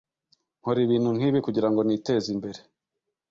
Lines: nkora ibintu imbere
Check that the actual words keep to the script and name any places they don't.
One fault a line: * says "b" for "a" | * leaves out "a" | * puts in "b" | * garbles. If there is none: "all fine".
* puts in "nkibi kugirango niteze"